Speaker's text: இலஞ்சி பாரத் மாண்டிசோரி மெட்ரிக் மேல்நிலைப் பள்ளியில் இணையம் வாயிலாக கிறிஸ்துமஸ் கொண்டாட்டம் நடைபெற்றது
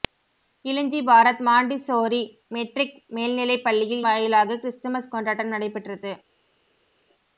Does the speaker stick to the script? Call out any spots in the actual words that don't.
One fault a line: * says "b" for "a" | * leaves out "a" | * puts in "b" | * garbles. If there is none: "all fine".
* leaves out "இணையம்"